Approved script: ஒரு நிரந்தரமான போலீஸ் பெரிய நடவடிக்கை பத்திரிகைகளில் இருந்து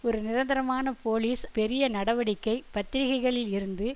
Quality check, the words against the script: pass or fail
pass